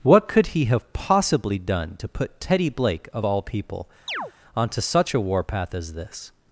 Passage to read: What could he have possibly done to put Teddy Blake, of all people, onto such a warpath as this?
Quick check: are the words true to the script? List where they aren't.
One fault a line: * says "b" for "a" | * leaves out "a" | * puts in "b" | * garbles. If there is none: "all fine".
all fine